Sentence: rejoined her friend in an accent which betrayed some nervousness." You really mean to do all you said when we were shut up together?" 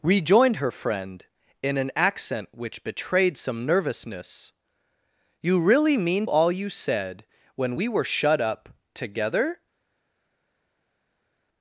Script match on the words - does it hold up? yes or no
no